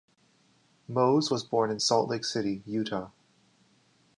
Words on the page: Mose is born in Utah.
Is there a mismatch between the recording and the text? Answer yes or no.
yes